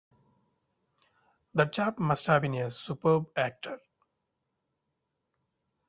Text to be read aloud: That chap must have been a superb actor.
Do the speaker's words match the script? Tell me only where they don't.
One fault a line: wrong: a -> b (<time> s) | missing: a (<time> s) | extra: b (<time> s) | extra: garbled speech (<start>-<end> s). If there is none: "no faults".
no faults